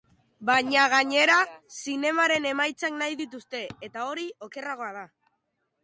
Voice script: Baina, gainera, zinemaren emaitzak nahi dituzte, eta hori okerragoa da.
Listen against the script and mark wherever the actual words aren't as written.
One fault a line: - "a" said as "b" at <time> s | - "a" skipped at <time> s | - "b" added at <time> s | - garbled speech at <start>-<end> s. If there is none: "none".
none